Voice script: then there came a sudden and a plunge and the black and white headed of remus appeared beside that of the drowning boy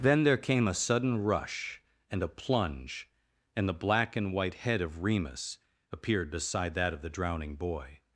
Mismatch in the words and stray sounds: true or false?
true